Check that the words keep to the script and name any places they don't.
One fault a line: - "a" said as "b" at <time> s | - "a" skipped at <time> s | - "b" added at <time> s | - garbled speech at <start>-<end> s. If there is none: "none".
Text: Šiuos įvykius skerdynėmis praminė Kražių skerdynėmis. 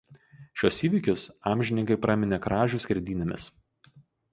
- "skerdynėmis" said as "amžininkai" at 1.5 s